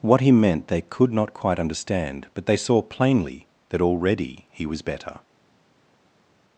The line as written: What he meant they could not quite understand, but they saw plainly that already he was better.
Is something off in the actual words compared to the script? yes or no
no